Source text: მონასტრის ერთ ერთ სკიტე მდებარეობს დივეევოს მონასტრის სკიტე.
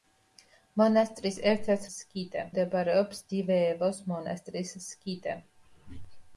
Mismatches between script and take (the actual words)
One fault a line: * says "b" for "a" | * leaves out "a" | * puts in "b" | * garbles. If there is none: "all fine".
all fine